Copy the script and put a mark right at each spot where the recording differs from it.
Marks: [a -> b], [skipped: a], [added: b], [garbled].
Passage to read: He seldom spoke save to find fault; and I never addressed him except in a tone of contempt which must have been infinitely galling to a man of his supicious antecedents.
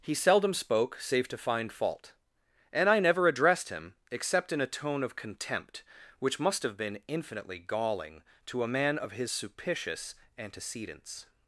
He seldom spoke save to find fault; and I never addressed him except in a tone of contempt which must have been infinitely galling to a man of his supicious antecedents.